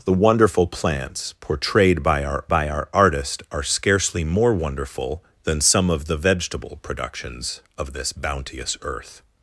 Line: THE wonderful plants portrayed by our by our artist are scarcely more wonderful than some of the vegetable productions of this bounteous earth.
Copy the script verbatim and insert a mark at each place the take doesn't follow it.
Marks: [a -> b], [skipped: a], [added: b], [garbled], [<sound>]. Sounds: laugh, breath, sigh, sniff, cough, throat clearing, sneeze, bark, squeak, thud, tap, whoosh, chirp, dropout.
THE wonderful plants portrayed by our by our artist are scarcely more wonderful than some of the vegetable productions of this bounteous earth.